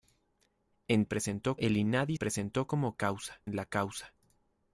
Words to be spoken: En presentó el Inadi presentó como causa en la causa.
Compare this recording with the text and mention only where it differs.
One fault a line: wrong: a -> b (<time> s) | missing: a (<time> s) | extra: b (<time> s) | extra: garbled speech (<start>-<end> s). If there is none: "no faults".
no faults